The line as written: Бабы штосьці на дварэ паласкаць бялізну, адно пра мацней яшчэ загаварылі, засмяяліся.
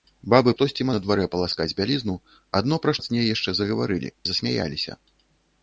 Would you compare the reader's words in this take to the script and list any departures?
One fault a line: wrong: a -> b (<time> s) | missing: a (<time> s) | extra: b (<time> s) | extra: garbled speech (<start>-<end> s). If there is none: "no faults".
no faults